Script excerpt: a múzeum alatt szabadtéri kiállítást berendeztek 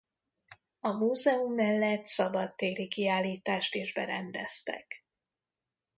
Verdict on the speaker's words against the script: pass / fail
fail